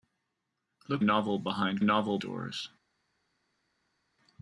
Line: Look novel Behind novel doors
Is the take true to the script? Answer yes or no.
yes